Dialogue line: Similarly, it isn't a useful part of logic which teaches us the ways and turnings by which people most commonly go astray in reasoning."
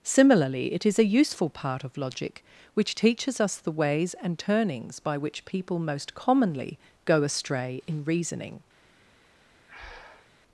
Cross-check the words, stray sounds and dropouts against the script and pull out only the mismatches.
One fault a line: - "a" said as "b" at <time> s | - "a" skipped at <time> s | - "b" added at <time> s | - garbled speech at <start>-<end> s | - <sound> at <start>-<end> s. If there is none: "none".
- "isn't" said as "is" at 0.8 s
- breath at 9.7-10.3 s